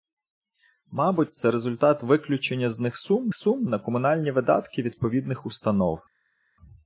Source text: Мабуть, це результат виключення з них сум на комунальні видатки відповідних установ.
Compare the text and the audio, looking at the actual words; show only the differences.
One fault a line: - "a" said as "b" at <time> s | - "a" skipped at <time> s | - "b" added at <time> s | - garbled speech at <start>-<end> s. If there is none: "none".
- "сум" added at 3.3 s